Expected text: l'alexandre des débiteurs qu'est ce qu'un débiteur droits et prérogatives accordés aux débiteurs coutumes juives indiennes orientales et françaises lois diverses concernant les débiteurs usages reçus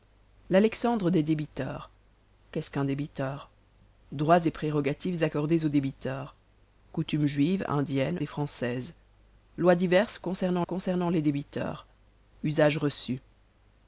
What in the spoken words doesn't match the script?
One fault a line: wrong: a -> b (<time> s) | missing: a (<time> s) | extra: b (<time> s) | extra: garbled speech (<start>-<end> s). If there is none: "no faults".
missing: orientales (8.2 s)
extra: concernant (10.6 s)